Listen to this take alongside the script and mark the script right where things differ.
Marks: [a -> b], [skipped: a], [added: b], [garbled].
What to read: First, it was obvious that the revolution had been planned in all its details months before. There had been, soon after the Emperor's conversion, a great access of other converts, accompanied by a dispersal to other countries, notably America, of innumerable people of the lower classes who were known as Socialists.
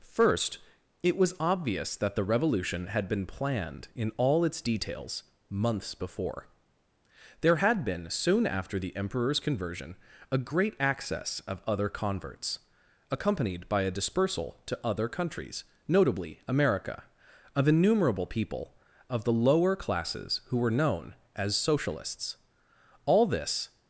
First, it was obvious that the revolution had been planned in all its details months before. There had been, soon after the Emperor's conversion, a great access of other converts, accompanied by a dispersal to other countries, notably America, of innumerable people of the lower classes who were known as Socialists. [added: All this]